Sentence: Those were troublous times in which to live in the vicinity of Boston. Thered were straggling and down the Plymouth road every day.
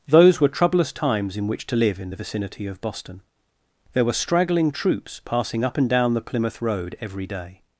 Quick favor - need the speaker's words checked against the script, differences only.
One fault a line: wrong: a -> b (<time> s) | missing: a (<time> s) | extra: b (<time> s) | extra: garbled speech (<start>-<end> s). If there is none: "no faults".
wrong: Thered -> There (3.9 s)
extra: troops passing up (4.7 s)